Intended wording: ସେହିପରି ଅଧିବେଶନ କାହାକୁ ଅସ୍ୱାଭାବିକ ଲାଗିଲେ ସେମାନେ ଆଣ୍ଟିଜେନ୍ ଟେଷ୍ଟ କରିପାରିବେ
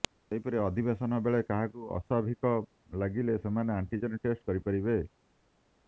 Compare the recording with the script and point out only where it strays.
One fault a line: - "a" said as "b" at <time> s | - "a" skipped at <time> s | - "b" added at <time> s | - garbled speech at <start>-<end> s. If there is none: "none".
- "ବେଳେ" added at 1.3 s